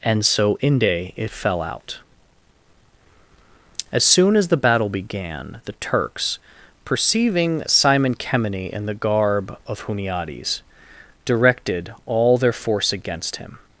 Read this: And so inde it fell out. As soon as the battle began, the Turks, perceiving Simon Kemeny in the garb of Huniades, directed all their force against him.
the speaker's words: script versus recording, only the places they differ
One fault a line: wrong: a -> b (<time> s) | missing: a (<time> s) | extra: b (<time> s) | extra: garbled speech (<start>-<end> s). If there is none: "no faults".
no faults